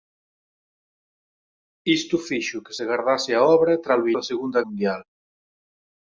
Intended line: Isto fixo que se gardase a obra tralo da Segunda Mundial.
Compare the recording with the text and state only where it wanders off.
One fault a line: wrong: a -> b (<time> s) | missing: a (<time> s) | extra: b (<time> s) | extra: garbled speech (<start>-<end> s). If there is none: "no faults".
no faults